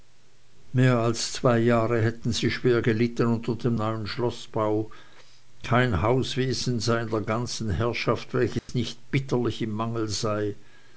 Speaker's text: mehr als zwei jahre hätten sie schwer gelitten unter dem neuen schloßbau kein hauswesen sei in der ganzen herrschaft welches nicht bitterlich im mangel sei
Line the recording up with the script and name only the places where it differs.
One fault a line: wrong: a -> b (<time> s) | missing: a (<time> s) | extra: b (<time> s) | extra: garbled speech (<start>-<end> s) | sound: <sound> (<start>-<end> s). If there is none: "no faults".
sound: dropout (8.6-8.7 s)